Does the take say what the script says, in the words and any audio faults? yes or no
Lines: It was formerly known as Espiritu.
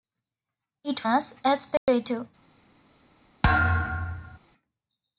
no